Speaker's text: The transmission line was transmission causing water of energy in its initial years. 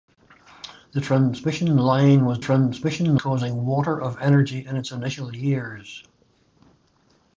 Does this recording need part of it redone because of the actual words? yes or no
no